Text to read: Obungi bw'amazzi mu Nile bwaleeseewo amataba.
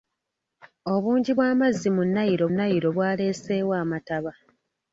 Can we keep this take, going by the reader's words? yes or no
no